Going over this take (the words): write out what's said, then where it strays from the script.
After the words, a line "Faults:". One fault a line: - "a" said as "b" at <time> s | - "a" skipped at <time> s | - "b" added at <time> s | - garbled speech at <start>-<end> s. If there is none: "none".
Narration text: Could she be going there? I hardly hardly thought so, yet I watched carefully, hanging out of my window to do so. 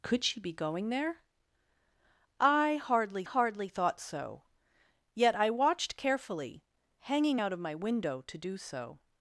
Could she be going there? I hardly hardly thought so, yet I watched carefully, hanging out of my window to do so.
Faults:
none